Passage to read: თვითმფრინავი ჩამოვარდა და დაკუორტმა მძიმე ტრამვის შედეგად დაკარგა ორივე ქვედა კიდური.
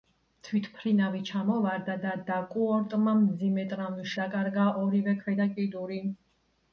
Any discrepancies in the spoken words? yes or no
yes